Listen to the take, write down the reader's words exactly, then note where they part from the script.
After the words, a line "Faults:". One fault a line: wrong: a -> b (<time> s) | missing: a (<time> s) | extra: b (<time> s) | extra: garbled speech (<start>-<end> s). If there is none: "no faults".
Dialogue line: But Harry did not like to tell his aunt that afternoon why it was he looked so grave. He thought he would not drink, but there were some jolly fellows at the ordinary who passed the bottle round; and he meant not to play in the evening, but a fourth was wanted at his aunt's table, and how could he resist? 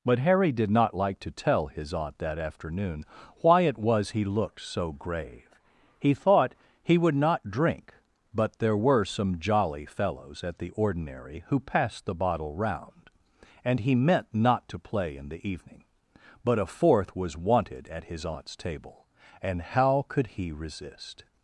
But Harry did not like to tell his aunt that afternoon why it was he looked so grave. He thought he would not drink, but there were some jolly fellows at the ordinary who passed the bottle round; and he meant not to play in the evening, but a fourth was wanted at his aunt's table, and how could he resist?
Faults:
no faults